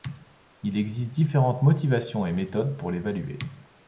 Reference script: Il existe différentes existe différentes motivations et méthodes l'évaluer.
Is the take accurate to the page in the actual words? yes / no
no